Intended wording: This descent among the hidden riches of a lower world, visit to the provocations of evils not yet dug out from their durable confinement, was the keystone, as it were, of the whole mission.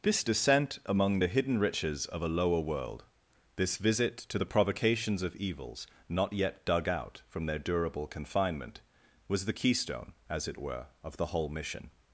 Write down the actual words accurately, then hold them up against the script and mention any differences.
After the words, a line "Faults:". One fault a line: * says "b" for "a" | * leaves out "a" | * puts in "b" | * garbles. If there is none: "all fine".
This descent among the hidden riches of a lower world, this visit to the provocations of evils not yet dug out from their durable confinement, was the keystone, as it were, of the whole mission.
Faults:
* puts in "this"